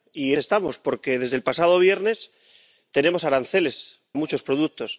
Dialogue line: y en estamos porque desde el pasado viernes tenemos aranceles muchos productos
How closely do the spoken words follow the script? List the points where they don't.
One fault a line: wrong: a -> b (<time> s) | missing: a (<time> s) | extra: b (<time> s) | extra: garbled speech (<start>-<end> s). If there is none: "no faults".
no faults